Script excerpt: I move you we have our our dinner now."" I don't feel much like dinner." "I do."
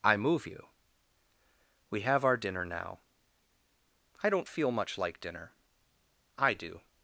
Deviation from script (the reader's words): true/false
true